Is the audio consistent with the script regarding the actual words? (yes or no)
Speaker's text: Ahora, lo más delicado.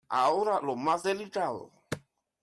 yes